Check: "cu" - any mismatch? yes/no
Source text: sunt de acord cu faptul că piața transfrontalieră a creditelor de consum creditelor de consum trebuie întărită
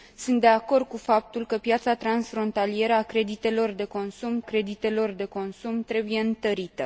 no